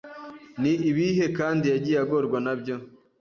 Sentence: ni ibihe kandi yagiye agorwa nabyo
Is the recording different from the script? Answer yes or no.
no